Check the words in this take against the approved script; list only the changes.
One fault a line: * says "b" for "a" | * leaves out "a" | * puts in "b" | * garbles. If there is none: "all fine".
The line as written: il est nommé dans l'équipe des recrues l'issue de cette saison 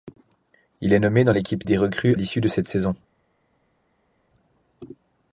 all fine